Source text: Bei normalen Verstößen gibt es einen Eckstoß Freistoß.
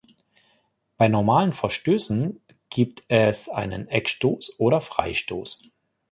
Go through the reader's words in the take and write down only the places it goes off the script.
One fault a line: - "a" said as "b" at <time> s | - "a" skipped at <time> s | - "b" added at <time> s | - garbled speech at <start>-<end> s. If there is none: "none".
- "oder" added at 4.6 s